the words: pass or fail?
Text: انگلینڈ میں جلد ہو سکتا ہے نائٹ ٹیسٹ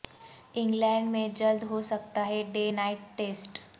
fail